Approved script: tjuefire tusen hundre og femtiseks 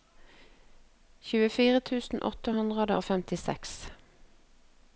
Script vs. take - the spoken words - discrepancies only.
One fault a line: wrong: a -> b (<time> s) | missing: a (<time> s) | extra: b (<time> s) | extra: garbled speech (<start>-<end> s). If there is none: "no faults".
extra: åtte (2.3 s)